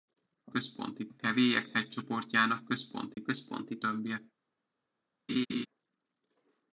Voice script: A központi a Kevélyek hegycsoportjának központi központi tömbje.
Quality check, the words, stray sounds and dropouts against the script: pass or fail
fail